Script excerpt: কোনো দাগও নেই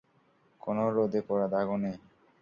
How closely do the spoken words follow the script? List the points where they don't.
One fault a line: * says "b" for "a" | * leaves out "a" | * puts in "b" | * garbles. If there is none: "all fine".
* puts in "রোদে পোড়া"